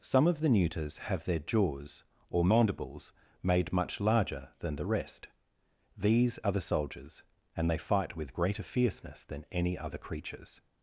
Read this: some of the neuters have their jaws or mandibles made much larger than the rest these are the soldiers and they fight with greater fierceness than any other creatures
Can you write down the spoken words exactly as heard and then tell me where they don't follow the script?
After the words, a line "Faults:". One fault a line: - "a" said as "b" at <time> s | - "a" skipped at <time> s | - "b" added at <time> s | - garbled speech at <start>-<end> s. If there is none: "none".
some of the neuters have their jaws or mandibles made much larger than the rest these are the soldiers and they fight with greater fierceness than any other creatures
Faults:
none